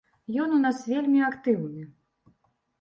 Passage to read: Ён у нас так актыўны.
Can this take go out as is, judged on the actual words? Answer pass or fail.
fail